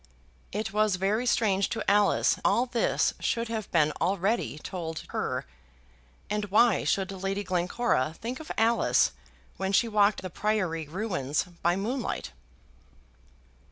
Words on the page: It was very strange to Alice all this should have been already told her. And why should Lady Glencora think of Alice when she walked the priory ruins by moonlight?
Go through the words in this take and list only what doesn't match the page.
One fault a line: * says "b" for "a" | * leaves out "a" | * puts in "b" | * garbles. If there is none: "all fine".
all fine